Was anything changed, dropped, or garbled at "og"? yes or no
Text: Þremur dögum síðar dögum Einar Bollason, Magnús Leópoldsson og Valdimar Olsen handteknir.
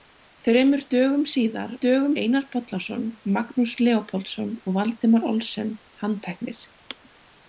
no